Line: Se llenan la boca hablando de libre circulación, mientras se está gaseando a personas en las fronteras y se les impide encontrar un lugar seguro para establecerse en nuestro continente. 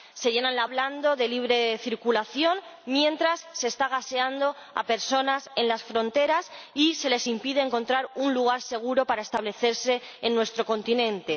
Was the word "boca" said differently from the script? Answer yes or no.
yes